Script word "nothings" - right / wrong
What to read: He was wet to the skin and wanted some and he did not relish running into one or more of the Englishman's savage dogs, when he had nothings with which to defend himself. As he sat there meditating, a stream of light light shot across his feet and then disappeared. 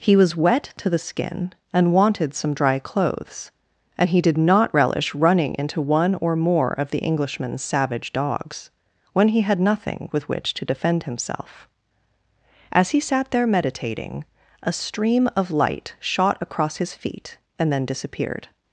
wrong